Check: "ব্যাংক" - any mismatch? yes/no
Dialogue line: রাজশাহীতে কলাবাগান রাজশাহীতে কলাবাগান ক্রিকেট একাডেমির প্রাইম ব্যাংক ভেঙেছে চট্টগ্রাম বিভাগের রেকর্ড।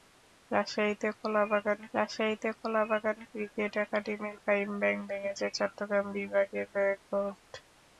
no